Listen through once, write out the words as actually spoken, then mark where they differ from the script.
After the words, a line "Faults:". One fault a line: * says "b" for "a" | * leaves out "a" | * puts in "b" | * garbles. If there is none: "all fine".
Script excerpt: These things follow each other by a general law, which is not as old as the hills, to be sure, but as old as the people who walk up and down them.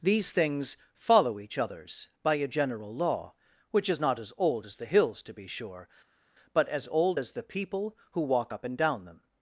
These things follow each others by a general law, which is not as old as the hills, to be sure, but as old as the people who walk up and down them.
Faults:
* says "others" for "other"